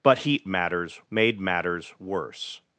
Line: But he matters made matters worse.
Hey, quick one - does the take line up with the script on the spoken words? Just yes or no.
yes